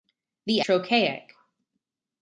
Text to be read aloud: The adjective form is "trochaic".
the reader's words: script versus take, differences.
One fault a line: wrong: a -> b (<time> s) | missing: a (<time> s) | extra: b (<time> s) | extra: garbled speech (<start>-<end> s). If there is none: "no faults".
missing: adjective form is (0.6 s)